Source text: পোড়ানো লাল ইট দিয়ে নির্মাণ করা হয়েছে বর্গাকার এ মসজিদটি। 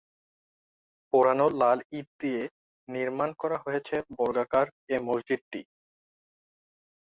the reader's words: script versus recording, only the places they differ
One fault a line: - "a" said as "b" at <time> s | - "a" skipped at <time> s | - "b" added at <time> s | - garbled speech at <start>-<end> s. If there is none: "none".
none